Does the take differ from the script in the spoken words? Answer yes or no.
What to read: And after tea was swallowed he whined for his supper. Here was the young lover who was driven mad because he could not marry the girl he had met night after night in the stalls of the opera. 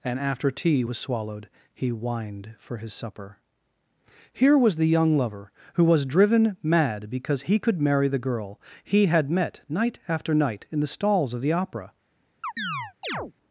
yes